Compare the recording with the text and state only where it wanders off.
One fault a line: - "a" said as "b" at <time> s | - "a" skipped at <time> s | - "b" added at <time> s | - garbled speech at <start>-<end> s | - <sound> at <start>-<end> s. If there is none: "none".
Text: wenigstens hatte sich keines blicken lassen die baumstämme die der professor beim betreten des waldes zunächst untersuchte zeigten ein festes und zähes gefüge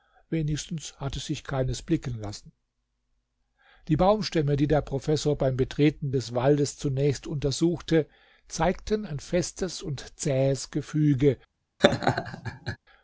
- laugh at 11.8-12.8 s